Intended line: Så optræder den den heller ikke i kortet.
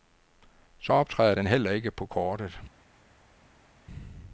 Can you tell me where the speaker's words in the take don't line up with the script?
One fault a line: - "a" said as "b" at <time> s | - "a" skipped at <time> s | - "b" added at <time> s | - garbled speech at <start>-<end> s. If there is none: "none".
- "den" skipped at 1.5 s
- "i" said as "på" at 1.9 s